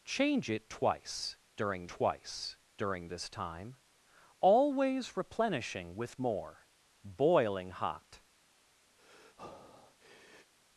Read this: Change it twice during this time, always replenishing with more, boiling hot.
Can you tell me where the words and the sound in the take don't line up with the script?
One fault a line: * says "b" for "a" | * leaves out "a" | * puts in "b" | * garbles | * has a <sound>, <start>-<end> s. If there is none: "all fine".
* puts in "twice during"
* has a breath, 9.0-10.5 s